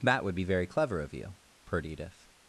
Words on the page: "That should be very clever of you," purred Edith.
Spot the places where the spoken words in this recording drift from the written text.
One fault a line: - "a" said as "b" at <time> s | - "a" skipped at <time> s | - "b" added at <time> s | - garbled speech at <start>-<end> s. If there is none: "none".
- "should" said as "would" at 0.2 s